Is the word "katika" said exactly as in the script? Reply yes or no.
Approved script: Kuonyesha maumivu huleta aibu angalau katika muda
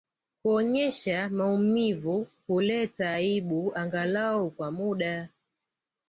no